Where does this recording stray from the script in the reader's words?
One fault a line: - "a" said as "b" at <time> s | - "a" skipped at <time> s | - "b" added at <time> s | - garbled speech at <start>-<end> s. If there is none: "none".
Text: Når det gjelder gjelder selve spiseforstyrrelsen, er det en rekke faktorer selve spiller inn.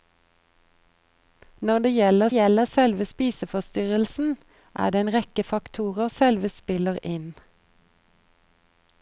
none